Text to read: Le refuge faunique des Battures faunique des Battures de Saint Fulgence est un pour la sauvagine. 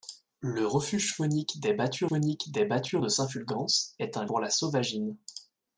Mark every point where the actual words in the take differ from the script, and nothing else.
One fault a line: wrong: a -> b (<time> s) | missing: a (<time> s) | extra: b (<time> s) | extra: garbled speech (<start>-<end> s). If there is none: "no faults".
no faults